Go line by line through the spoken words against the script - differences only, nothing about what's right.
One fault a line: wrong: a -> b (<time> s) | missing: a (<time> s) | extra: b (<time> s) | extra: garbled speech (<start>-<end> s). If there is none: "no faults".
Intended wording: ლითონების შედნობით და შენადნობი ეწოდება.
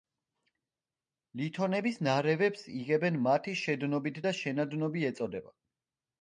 extra: ნარევებს იღებენ მათი (2.1 s)